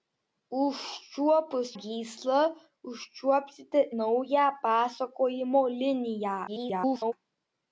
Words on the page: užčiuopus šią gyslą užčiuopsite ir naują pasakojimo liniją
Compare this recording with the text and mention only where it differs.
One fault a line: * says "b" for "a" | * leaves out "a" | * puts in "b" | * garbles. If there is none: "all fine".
* leaves out "šią"
* leaves out "ir"
* garbles